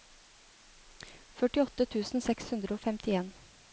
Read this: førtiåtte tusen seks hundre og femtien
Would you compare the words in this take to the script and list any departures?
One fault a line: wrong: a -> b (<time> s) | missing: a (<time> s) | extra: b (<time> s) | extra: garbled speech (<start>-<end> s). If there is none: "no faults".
no faults